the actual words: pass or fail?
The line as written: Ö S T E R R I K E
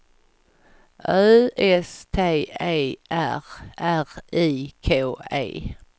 pass